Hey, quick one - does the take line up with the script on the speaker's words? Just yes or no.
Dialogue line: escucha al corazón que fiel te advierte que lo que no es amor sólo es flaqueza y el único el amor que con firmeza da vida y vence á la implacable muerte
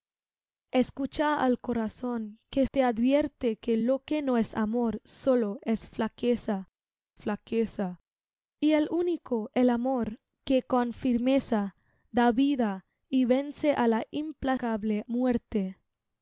no